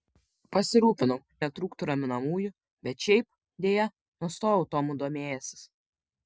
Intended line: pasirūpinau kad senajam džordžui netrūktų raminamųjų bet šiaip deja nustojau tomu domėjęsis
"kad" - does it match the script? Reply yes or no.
no